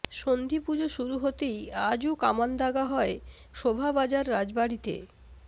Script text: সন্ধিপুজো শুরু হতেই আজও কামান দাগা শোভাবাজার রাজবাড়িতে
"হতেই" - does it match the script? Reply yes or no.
yes